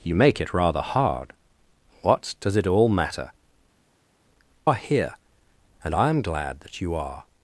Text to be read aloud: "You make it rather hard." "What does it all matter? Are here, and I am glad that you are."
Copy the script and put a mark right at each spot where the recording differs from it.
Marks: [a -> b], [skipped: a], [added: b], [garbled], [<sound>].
"You make it rather hard." "What does it all matter? Are here, and I am glad that you are."